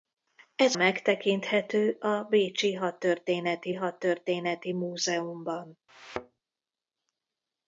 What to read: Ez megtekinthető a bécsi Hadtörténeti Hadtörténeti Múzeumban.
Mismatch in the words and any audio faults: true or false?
true